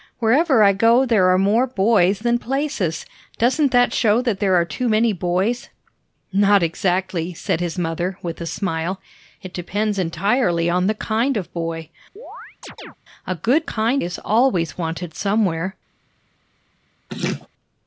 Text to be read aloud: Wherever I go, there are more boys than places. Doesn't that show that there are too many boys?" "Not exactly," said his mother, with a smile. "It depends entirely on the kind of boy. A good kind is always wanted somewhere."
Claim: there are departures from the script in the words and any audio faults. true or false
true